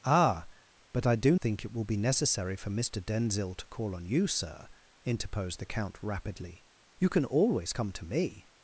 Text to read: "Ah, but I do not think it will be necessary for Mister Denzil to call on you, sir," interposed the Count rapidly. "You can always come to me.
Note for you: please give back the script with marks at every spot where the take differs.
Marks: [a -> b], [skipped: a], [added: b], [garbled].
"Ah, but I do [skipped: not] think it will be necessary for Mister Denzil to call on you, sir," interposed the Count rapidly. "You can always come to me.